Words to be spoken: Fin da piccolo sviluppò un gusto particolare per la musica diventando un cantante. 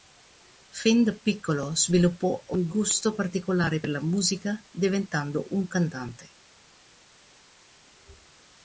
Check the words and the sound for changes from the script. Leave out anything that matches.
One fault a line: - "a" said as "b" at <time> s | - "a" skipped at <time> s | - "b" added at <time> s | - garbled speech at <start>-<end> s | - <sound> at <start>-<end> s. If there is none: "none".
none